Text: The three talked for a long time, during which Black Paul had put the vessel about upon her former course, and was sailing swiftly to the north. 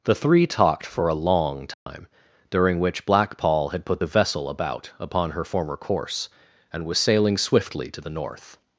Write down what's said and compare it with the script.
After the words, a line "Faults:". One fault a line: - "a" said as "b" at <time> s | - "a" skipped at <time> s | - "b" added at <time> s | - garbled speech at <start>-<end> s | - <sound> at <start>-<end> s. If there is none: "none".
The three talked for a long time, during which Black Paul had put the vessel about upon her former course, and was sailing swiftly to the north.
Faults:
- dropout at 1.7-1.9 s